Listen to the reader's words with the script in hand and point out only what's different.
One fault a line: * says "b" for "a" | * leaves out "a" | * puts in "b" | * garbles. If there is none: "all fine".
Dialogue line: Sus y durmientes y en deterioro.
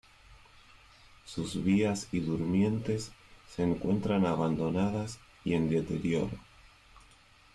* puts in "vías"
* puts in "se encuentran abandonadas"